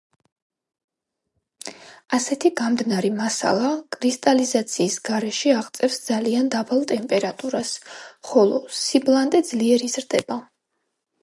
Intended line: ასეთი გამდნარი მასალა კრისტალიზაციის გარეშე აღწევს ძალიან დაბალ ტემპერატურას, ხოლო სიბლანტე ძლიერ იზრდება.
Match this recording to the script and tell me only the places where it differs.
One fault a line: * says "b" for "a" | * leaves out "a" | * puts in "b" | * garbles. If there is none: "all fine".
all fine